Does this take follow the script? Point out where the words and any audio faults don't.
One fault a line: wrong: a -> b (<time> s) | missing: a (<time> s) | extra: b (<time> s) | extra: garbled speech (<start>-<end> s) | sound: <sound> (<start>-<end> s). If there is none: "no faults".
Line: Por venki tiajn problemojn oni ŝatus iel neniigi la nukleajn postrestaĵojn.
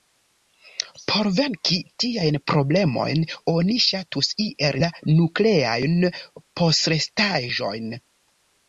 missing: neniigi (4.8 s)